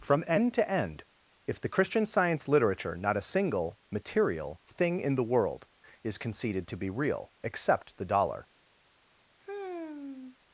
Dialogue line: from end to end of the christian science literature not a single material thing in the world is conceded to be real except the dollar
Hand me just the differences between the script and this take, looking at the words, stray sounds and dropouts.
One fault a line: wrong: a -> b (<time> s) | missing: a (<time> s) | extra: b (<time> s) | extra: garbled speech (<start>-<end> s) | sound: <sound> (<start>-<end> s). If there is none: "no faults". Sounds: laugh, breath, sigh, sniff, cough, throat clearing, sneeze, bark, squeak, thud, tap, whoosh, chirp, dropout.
wrong: of -> if (1.4 s)
sound: sigh (9.4-10.4 s)